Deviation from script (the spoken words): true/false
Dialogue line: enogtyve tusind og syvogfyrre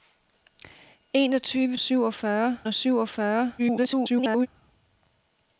true